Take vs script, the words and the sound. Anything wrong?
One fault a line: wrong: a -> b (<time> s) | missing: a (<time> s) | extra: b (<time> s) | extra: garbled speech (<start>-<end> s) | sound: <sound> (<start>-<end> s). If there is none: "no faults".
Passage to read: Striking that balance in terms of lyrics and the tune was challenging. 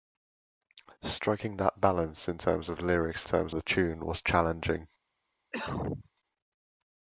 wrong: and -> terms (3.3 s)
sound: cough (5.5-6.1 s)